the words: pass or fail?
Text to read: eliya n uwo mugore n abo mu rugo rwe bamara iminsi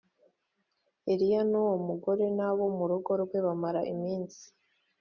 pass